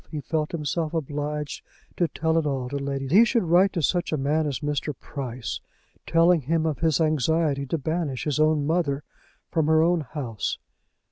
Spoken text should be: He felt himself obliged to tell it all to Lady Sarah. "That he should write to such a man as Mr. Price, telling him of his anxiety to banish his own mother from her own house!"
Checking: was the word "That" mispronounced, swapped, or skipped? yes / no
yes